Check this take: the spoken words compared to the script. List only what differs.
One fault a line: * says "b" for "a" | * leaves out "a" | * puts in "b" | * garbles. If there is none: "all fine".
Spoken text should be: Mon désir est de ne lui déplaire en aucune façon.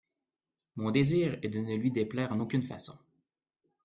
all fine